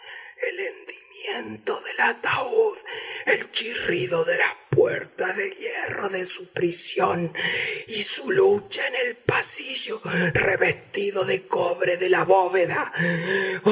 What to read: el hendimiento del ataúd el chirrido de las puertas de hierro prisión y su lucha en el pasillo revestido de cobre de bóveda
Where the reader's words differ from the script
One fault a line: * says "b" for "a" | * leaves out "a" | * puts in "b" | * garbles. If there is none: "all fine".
* puts in "de su"
* puts in "la"